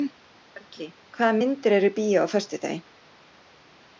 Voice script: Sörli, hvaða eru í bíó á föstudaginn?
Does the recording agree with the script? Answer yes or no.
no